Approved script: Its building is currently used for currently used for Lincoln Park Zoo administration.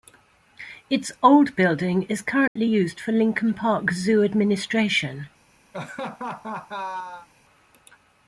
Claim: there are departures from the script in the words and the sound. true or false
true